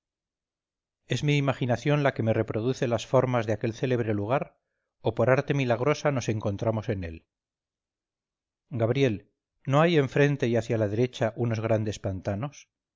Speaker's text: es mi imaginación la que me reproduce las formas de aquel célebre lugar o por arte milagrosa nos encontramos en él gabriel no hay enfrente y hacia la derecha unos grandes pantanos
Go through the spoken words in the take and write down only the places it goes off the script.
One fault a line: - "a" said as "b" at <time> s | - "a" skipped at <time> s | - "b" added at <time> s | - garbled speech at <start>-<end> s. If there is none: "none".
none